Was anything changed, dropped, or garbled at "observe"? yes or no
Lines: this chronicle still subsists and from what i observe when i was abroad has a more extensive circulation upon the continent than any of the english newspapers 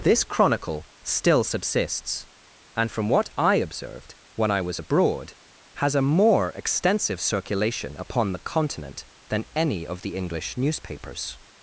yes